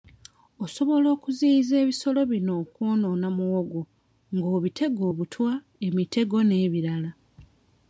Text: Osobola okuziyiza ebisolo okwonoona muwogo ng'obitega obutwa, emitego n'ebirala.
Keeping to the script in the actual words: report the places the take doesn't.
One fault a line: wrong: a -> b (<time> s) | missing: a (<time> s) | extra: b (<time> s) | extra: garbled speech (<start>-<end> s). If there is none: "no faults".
extra: bino (2.3 s)